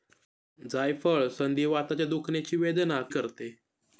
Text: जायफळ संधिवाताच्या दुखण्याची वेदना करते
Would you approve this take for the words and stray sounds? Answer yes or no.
yes